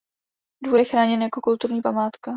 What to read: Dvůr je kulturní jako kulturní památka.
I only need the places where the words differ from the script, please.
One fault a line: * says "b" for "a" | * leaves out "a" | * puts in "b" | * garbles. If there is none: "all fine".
* says "chráněn" for "kulturní"